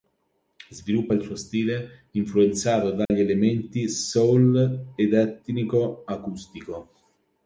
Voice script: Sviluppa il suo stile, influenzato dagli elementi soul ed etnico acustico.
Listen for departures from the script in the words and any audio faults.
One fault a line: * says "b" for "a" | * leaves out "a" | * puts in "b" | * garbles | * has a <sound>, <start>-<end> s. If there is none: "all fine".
* has a dropout, 3.0-3.1 s